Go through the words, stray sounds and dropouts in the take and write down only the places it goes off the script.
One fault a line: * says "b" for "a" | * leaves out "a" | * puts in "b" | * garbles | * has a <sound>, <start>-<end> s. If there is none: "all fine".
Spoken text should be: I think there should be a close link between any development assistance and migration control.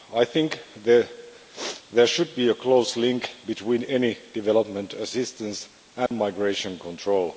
* has a dropout, 6.1-6.1 s